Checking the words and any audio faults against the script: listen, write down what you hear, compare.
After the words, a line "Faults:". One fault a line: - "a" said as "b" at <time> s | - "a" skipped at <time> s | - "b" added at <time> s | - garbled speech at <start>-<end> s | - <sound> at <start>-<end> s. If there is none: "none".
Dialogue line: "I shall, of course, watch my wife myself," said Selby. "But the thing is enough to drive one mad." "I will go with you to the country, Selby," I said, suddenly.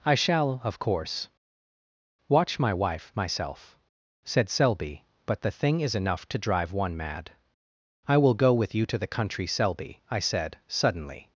"I shall, of course, watch my wife myself," said Selby. "But the thing is enough to drive one mad." "I will go with you to the country, Selby," I said, suddenly.
Faults:
none